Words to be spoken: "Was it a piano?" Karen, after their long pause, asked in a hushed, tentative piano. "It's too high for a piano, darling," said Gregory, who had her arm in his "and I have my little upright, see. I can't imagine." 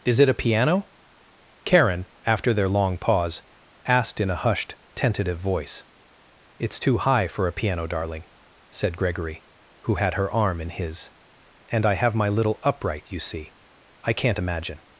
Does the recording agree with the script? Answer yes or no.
no